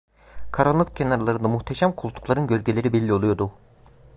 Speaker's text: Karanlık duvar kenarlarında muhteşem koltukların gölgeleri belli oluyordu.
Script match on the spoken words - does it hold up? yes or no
no